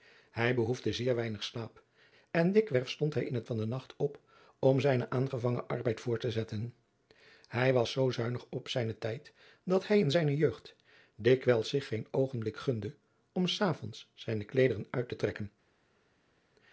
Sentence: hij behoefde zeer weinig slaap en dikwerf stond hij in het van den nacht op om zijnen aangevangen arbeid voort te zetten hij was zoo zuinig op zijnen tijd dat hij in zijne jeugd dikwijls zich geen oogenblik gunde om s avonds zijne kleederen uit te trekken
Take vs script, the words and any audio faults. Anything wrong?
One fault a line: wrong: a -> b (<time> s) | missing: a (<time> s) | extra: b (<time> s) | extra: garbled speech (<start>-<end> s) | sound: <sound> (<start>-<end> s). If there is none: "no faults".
no faults